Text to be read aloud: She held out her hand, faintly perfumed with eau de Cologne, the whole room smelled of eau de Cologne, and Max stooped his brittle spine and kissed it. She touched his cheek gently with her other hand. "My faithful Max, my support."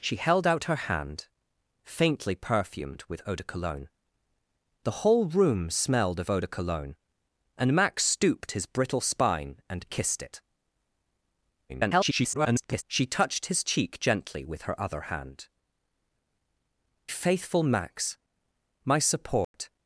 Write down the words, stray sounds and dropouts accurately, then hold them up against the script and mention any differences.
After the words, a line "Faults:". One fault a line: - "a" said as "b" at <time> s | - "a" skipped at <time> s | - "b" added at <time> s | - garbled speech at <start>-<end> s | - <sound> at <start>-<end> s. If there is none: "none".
She held out her hand, faintly perfumed with eau de Cologne, the whole room smelled of eau de Cologne, and Max stooped his brittle spine and kissed it. [garbled] She touched his cheek gently with her other hand. "Faithful Max, my support."
Faults:
- garbled speech at 11.7-12.8 s
- "My" skipped at 15.5 s
- dropout at 19.4-19.5 s